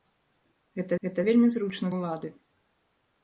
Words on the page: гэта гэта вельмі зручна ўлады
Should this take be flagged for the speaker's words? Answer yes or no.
no